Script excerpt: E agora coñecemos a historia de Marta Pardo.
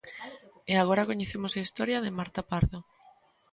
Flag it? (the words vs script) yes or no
no